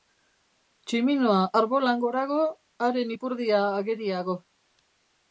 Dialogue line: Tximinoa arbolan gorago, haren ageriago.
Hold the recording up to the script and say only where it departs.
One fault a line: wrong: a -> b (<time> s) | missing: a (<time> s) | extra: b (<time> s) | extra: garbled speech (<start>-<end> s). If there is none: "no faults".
extra: ipurdia (3.1 s)